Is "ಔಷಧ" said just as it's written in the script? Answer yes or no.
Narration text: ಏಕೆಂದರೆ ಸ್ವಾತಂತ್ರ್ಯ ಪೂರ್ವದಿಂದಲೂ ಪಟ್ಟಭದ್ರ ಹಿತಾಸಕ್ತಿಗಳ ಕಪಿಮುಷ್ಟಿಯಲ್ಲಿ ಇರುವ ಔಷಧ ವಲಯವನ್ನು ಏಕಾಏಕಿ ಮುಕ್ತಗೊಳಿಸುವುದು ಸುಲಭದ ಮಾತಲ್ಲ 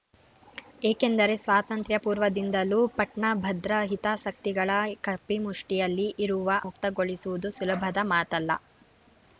no